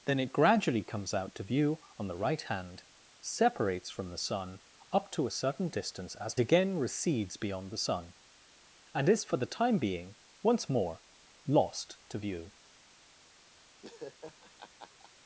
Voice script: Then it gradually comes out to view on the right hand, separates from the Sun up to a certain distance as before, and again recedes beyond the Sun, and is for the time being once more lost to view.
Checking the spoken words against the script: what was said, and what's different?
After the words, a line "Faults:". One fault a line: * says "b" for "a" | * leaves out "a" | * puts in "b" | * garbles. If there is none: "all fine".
Then it gradually comes out to view on the right hand, separates from the Sun up to a certain distance as again recedes beyond the Sun, and is for the time being once more lost to view.
Faults:
* leaves out "before and"